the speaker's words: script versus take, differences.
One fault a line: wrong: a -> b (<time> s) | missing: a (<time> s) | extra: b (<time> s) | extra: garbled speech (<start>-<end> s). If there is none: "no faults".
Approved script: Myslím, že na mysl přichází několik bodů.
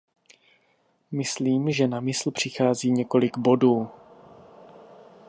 no faults